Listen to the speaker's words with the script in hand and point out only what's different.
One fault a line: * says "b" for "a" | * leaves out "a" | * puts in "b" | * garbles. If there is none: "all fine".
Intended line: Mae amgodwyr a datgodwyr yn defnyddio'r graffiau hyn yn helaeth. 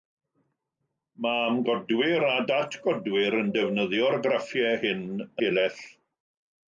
* leaves out "yn"